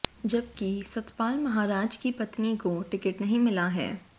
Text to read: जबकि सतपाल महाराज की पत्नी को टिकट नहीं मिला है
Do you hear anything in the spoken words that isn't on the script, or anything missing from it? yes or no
no